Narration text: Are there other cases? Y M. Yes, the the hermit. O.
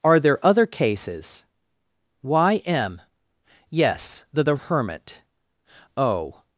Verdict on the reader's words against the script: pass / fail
pass